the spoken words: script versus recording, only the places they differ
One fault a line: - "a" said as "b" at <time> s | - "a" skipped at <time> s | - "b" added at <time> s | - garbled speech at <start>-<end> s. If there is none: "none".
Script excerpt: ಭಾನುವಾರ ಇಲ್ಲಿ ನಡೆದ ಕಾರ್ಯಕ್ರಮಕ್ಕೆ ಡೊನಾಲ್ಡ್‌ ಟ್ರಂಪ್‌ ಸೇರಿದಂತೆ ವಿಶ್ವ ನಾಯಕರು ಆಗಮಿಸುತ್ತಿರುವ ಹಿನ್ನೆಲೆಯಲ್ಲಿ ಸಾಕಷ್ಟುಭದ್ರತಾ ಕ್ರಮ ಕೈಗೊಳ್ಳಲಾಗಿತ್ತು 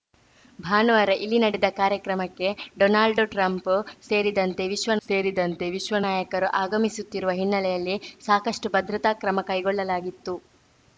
- "ಸೇರಿದಂತೆ ವಿಶ್ವ" added at 5.1 s